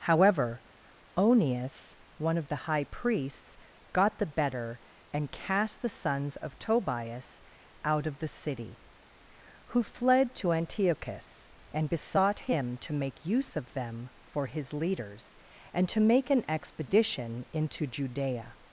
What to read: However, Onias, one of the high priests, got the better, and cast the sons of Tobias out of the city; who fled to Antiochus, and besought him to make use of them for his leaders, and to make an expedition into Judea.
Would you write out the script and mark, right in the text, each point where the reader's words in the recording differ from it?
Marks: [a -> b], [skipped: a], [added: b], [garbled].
However, Onias, one of the high priests, got the better, and cast the sons of Tobias out of the city; who fled to Antiochus, and besought him to make use of them for his leaders, and to make an expedition into Judea.